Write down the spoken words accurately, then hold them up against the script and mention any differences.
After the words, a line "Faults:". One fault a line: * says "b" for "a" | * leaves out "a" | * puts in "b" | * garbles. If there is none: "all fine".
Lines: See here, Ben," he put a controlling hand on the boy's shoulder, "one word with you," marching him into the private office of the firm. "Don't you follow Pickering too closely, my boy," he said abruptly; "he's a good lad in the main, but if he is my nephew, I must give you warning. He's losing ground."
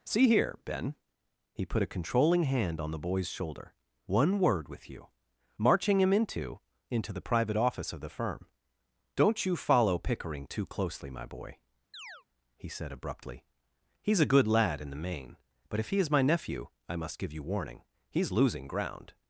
See here, Ben," he put a controlling hand on the boy's shoulder, "one word with you," marching him into into the private office of the firm. "Don't you follow Pickering too closely, my boy," he said abruptly; "he's a good lad in the main, but if he is my nephew, I must give you warning. He's losing ground."
Faults:
* puts in "into"